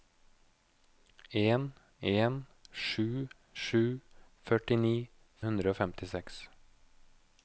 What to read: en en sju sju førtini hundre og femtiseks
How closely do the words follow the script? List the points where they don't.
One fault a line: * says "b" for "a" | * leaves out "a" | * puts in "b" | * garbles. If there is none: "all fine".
all fine